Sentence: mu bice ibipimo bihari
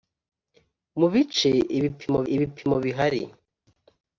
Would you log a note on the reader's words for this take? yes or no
yes